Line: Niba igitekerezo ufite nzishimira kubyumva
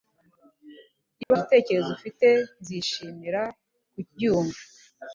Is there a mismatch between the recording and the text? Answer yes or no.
no